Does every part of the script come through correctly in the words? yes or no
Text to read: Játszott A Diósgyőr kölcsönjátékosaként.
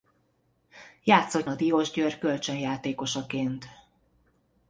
yes